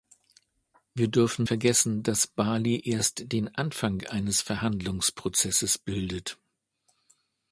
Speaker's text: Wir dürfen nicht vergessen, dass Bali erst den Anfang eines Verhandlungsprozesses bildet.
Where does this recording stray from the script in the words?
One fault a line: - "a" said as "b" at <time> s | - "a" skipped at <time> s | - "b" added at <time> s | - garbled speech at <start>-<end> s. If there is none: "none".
- "nicht" skipped at 1.4 s